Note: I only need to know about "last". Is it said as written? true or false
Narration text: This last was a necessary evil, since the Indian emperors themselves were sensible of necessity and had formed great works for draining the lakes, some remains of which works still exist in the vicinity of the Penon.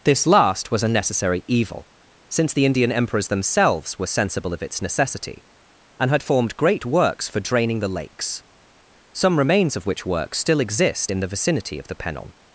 true